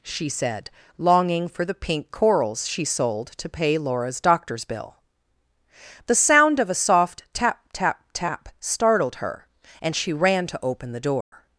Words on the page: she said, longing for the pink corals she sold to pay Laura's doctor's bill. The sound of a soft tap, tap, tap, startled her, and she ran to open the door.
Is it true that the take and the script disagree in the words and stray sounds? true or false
true